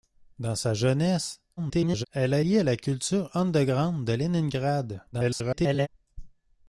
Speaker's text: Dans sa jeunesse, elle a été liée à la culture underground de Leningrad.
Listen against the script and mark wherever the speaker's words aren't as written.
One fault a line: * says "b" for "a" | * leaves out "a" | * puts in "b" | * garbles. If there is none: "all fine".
* garbles
* leaves out "été"
* garbles